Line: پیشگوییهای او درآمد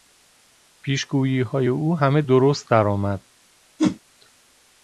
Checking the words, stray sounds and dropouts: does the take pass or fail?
fail